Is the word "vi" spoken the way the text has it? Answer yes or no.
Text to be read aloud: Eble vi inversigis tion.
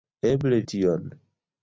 no